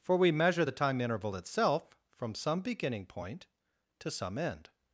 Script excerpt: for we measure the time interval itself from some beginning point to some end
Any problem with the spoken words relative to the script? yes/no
no